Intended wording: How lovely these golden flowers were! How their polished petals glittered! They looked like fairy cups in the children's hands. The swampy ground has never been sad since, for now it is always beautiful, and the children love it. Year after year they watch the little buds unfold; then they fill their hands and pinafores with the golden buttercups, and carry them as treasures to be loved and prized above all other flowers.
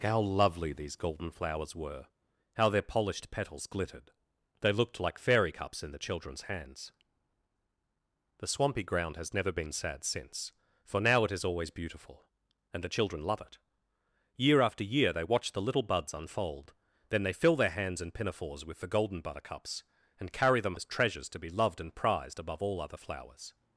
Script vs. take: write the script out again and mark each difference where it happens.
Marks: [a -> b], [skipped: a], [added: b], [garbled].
How lovely these golden flowers were! How their polished petals glittered! They looked like fairy cups in the children's hands. The swampy ground has never been sad since, for now it is always beautiful, and the children love it. Year after year they watch the little buds unfold; then they fill their hands and pinafores with the golden buttercups, and carry them as treasures to be loved and prized above all other flowers.